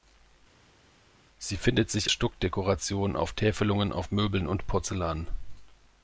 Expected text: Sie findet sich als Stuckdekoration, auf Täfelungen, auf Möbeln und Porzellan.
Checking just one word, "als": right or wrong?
wrong